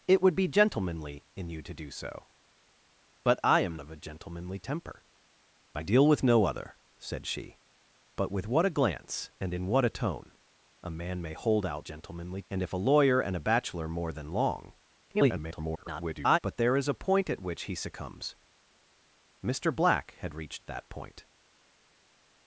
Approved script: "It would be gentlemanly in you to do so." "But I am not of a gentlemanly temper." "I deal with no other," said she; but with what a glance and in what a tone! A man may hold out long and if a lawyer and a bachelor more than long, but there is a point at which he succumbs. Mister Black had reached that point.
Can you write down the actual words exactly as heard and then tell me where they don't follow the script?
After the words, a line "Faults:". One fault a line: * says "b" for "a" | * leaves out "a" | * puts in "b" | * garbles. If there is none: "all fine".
"It would be gentlemanly in you to do so." "But I am of a gentlemanly temper." "I deal with no other," said she; but with what a glance and in what a tone! A man may hold out gentlemanly and if a lawyer and a bachelor more than long, [garbled] but there is a point at which he succumbs. Mister Black had reached that point.
Faults:
* leaves out "not"
* says "gentlemanly" for "long"
* garbles